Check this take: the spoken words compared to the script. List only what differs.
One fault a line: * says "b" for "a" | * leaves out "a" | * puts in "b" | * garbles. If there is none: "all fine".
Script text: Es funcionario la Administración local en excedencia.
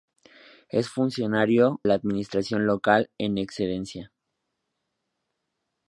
all fine